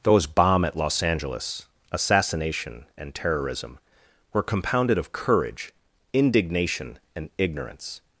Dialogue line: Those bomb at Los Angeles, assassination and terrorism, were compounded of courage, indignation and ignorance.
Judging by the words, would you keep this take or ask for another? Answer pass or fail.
pass